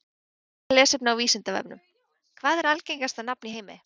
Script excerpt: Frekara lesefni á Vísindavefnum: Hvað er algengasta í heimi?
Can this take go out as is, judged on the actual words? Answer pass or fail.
fail